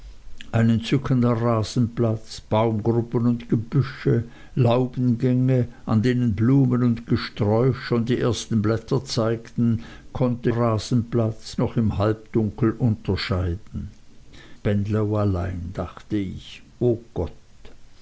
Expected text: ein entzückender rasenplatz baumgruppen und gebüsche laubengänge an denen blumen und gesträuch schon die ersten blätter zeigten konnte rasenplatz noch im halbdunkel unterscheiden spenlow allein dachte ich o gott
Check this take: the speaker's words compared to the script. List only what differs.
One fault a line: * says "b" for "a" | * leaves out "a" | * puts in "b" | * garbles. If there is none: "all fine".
all fine